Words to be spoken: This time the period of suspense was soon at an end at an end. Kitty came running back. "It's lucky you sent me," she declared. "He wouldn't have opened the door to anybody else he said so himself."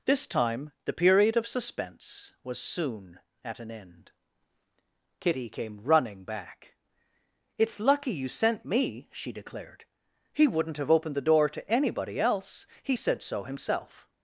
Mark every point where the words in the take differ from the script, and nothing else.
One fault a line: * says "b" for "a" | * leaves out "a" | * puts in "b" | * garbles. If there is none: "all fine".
* leaves out "at an end"